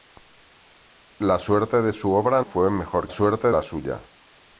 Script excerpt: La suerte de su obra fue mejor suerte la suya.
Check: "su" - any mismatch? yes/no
no